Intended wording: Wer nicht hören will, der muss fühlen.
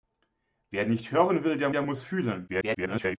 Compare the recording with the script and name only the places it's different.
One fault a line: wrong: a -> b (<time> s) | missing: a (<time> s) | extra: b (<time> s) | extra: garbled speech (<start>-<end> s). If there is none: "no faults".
extra: der (1.7 s)
extra: garbled speech (2.5-3.2 s)